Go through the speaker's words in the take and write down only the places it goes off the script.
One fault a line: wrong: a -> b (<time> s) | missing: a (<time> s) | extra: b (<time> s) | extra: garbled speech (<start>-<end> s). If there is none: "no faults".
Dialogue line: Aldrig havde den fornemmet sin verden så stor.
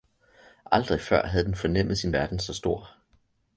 extra: før (1.0 s)